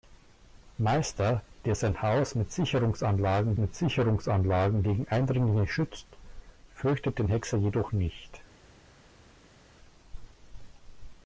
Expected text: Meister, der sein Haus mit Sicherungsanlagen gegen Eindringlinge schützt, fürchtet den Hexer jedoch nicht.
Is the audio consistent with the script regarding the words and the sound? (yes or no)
no